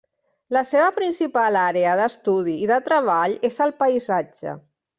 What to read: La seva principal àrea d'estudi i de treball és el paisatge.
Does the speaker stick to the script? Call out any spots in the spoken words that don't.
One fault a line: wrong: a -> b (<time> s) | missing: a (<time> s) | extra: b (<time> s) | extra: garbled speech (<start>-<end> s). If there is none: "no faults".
no faults